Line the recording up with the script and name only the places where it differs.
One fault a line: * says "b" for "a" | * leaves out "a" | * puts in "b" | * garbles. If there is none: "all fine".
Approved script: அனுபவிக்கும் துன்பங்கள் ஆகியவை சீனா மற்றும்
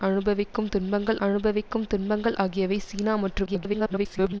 * puts in "அனுபவிக்கும் துன்பங்கள்"
* garbles